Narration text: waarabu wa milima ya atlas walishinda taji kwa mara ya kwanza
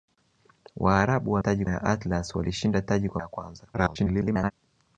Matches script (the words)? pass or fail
fail